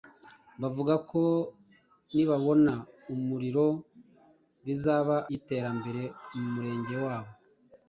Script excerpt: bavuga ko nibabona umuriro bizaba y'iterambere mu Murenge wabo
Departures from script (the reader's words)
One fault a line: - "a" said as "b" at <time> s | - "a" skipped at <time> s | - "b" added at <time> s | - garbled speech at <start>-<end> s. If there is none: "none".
none